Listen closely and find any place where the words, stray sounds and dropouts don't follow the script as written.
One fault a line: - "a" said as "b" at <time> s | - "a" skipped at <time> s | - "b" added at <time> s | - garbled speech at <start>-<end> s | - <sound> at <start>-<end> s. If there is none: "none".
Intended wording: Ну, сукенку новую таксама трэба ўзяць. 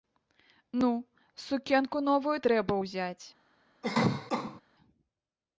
- "таксама" skipped at 2.4 s
- cough at 3.8-4.6 s